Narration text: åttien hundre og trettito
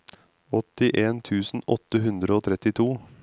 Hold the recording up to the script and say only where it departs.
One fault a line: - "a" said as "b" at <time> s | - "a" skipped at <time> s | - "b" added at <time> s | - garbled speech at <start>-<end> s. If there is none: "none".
- "tusen åtte" added at 1.3 s